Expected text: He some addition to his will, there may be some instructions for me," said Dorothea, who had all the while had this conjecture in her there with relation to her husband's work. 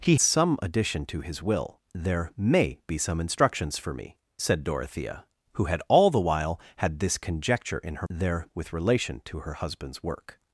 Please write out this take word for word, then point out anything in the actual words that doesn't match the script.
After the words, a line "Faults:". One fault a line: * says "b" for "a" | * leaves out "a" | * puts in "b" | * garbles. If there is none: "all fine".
He some addition to his will, there may be some instructions for me," said Dorothea, who had all the while had this conjecture in her there with relation to her husband's work.
Faults:
all fine